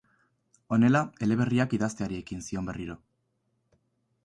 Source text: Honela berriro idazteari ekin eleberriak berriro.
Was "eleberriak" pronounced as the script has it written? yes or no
no